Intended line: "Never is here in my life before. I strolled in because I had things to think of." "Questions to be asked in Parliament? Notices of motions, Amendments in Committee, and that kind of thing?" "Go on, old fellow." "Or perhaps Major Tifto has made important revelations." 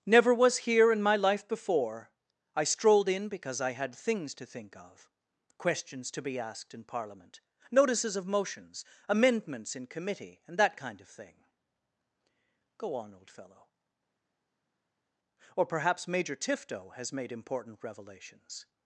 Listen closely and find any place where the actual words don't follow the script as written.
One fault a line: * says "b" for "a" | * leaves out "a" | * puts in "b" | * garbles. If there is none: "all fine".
* says "was" for "is"